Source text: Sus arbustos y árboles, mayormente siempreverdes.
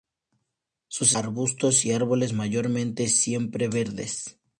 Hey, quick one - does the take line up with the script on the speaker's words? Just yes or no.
yes